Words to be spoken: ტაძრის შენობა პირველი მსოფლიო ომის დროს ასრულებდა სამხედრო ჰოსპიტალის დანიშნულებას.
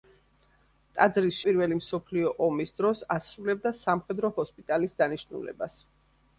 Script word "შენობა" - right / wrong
wrong